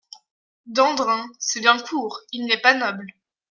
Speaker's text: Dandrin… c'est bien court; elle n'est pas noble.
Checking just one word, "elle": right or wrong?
wrong